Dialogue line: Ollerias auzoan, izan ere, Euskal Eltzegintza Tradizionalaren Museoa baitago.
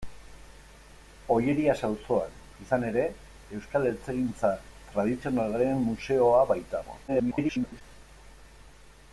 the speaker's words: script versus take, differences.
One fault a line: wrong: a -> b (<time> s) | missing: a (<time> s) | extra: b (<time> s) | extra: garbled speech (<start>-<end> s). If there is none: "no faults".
extra: garbled speech (7.1-7.8 s)